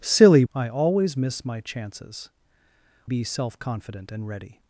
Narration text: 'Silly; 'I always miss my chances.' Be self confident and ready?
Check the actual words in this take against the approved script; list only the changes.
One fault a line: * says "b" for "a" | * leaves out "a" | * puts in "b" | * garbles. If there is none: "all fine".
all fine